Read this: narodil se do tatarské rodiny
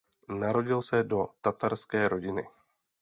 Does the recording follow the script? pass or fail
pass